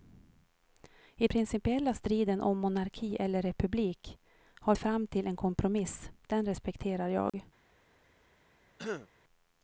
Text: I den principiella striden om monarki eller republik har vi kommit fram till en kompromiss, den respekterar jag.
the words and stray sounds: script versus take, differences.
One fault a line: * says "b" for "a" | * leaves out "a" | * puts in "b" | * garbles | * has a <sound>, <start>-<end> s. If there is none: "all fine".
* leaves out "den"
* leaves out "vi kommit"
* has a dropout, 7.3-7.3 s
* has a throat clearing, 8.8-9.1 s